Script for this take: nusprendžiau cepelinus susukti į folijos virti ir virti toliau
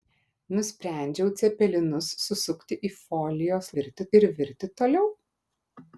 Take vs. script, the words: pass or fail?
pass